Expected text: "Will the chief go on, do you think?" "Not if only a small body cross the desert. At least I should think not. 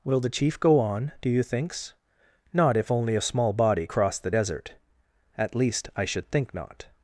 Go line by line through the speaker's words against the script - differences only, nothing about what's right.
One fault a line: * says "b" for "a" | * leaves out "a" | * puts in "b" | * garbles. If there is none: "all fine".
* says "thinks" for "think"